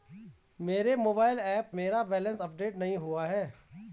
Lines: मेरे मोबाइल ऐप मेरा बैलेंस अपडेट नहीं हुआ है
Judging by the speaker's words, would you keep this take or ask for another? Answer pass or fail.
pass